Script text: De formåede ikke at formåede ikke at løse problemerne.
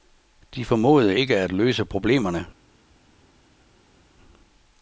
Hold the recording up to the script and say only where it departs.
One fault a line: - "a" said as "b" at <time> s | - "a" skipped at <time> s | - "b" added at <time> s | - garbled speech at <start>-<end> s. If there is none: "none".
- "formåede ikke at" skipped at 1.5 s